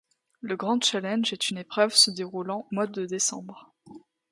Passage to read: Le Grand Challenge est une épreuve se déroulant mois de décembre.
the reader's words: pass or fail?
pass